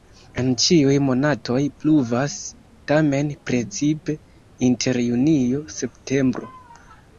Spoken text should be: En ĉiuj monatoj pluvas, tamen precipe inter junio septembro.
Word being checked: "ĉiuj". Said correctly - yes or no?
yes